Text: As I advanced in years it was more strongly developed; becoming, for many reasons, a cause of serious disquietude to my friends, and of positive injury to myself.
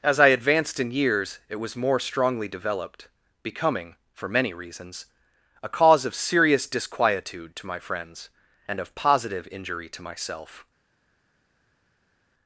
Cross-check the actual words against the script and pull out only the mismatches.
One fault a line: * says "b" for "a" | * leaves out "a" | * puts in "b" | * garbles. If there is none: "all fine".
all fine